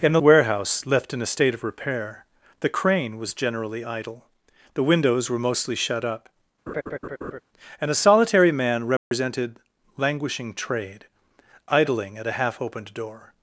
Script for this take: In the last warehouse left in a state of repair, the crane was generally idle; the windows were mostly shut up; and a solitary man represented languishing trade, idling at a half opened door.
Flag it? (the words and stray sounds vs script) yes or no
yes